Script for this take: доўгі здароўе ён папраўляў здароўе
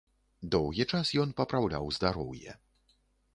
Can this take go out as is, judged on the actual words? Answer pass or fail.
fail